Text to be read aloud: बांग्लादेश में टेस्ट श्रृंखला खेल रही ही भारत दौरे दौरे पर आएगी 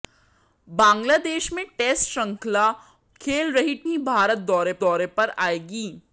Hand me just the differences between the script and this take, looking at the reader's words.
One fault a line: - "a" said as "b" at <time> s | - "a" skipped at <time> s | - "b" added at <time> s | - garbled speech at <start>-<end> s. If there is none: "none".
none